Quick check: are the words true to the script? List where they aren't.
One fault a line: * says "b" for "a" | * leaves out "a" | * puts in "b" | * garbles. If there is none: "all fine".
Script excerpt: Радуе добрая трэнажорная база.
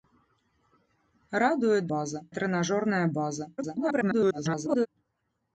* says "база" for "добрая"
* garbles